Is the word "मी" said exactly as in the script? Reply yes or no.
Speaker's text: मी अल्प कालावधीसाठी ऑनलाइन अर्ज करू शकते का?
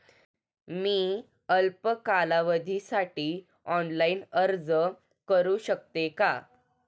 yes